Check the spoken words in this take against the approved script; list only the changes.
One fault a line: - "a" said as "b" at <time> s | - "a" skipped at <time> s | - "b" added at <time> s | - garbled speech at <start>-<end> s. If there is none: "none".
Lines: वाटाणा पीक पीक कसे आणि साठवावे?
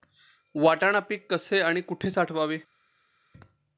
- "पीक" skipped at 1.3 s
- "कुठे" added at 1.8 s